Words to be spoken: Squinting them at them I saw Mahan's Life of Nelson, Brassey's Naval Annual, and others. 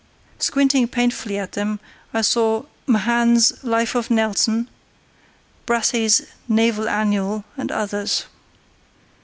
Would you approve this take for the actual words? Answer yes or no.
no